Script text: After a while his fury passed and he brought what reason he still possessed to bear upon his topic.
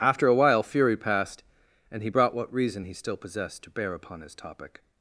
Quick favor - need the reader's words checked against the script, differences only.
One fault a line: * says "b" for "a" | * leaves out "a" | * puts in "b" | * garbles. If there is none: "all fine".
* leaves out "his"